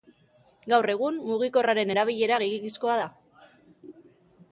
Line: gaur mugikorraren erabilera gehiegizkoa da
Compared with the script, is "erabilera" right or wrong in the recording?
right